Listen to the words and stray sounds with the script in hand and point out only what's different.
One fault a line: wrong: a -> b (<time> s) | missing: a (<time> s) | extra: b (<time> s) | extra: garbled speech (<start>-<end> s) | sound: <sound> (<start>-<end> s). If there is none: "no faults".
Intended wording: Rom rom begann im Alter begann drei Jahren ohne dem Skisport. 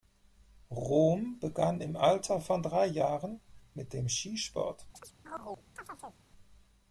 missing: rom (1.4 s)
wrong: begann -> von (2.4 s)
wrong: ohne -> mit (3.8 s)
sound: chirp (4.9-6.2 s)